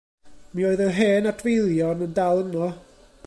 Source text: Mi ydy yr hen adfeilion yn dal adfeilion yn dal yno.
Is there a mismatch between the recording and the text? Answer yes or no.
yes